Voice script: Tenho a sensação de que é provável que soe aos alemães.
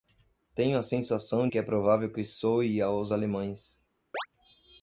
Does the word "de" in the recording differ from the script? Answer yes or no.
yes